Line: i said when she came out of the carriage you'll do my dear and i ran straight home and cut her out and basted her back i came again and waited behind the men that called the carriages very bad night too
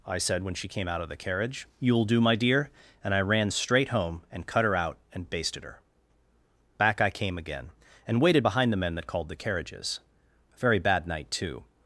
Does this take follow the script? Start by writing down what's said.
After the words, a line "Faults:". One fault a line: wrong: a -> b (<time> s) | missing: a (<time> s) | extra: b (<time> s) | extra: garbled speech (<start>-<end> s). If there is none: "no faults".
i said when she came out of the carriage you'll do my dear and i ran straight home and cut her out and basted her back i came again and waited behind the men that called the carriages a very bad night too
Faults:
extra: a (10.5 s)